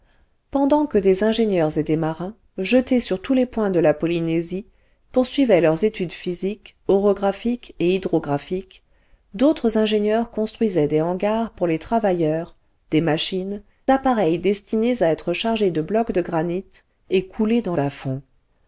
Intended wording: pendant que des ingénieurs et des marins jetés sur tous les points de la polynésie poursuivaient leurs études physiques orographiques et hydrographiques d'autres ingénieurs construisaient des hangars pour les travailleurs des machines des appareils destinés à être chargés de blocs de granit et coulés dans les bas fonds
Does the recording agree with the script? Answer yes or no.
no